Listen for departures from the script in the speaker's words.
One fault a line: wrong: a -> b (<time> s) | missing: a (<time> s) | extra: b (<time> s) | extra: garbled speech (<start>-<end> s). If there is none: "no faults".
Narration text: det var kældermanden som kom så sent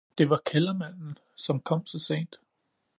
no faults